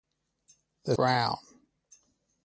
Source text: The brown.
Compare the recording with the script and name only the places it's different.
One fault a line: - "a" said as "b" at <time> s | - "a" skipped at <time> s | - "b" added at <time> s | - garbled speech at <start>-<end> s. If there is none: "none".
none